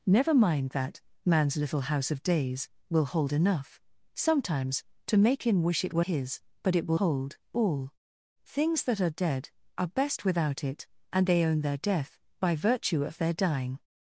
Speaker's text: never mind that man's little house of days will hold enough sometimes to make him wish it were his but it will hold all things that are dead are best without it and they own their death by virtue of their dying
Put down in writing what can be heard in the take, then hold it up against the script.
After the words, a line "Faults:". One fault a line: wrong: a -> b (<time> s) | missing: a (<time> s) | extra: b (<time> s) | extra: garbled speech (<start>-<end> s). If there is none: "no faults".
never mind that man's little house of days will hold enough sometimes to make him wish it were his but it will hold all things that are dead are best without it and they own their death by virtue of their dying
Faults:
no faults